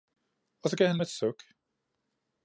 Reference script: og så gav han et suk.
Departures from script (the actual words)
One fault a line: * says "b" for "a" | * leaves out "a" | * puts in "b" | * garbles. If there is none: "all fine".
all fine